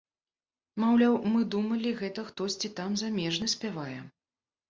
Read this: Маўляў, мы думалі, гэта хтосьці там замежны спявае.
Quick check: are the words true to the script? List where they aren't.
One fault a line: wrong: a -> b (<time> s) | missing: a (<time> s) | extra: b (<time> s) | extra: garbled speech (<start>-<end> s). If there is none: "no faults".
no faults